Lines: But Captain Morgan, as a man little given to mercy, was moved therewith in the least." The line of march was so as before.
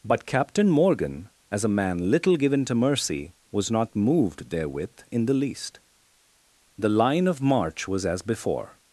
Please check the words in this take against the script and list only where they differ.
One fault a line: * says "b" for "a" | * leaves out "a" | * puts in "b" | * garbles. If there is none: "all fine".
* puts in "not"
* leaves out "so"